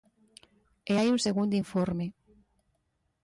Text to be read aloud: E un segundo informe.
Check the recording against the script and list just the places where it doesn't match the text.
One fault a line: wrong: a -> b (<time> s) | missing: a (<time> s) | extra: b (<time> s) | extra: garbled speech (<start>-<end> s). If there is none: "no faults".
extra: hai (1.0 s)